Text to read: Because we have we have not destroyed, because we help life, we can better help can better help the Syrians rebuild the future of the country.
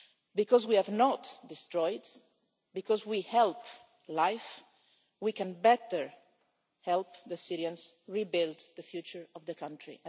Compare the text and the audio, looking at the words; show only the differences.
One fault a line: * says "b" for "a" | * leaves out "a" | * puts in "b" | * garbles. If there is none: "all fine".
* leaves out "we have"
* leaves out "can better help"